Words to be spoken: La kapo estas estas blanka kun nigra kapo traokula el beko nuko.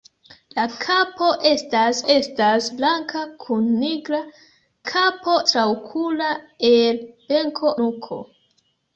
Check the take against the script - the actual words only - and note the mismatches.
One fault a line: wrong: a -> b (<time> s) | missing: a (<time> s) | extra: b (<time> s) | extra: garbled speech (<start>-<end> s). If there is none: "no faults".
no faults